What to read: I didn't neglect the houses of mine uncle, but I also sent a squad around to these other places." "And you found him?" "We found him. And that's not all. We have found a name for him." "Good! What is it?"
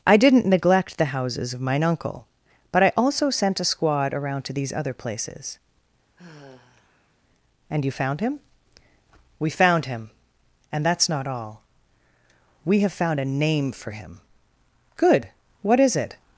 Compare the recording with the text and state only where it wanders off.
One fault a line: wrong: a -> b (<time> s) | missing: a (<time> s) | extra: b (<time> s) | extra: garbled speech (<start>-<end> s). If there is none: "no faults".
no faults